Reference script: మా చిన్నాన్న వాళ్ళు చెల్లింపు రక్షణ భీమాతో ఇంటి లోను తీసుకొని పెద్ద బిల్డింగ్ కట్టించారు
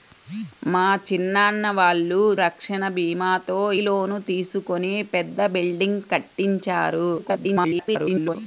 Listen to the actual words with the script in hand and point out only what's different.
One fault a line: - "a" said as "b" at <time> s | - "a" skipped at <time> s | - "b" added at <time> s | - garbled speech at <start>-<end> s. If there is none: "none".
- "చెల్లింపు" skipped at 2.2 s
- "ఇంటి" skipped at 3.6 s
- garbled speech at 7.2-8.4 s